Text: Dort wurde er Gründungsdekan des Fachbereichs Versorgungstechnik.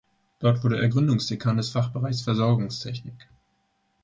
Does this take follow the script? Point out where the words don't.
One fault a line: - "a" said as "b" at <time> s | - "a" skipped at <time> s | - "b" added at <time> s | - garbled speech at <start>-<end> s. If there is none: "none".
none